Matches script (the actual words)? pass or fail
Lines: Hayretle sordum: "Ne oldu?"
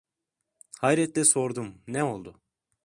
pass